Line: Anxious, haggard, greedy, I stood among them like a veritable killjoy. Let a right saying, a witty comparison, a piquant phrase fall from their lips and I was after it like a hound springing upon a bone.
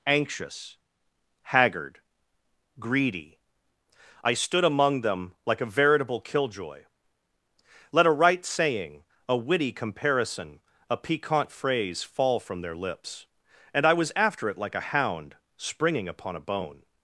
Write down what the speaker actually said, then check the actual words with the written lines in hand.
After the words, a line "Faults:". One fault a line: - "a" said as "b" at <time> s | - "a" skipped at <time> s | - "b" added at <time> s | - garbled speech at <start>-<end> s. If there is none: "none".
Anxious, haggard, greedy, I stood among them like a veritable killjoy. Let a right saying, a witty comparison, a piquant phrase fall from their lips and I was after it like a hound springing upon a bone.
Faults:
none